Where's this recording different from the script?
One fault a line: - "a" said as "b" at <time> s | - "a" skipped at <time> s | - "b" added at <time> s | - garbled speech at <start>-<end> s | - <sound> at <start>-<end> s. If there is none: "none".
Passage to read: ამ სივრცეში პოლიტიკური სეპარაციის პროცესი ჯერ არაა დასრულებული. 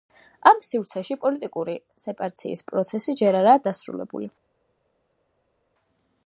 none